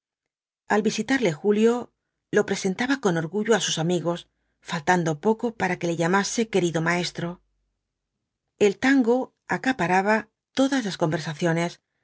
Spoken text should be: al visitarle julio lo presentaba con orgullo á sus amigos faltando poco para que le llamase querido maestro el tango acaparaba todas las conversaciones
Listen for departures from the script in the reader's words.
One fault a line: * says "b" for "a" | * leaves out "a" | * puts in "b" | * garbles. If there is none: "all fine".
all fine